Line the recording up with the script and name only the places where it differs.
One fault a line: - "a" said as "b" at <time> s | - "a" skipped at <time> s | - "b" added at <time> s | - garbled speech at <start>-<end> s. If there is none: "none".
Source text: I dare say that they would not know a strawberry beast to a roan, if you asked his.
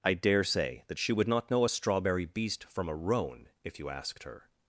- "they" said as "she" at 1.0 s
- "to" said as "from" at 2.7 s
- "his" said as "her" at 4.2 s